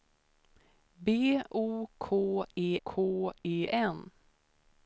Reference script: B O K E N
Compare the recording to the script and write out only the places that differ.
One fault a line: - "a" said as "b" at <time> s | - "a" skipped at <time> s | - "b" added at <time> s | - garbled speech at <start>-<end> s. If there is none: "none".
- "K E" added at 2.8 s